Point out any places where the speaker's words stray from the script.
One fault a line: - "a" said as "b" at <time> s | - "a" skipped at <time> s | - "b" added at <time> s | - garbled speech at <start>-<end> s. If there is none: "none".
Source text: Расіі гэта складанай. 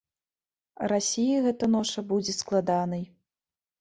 - "ноша будзе" added at 1.8 s